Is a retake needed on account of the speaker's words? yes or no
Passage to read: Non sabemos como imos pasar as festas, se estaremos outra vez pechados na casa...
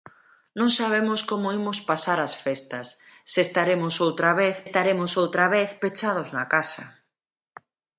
yes